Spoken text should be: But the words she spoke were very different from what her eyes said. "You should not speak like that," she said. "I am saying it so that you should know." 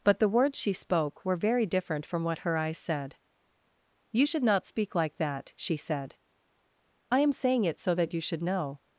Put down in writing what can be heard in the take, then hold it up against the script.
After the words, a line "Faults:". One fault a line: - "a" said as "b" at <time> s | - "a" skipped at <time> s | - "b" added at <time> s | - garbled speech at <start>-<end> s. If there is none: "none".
But the words she spoke were very different from what her eyes said. "You should not speak like that," she said. "I am saying it so that you should know."
Faults:
none